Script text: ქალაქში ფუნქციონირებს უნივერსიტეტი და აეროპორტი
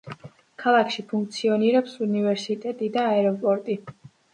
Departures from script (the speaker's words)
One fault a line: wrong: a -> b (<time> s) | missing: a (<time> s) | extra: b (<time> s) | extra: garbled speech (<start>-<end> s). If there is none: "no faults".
no faults